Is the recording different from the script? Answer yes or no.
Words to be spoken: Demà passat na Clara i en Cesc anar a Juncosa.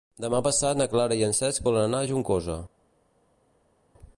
yes